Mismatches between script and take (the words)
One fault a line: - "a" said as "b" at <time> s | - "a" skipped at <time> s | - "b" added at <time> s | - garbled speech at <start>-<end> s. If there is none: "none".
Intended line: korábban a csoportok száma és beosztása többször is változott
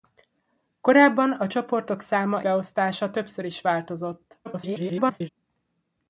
- "és" skipped at 2.4 s
- garbled speech at 4.4-5.3 s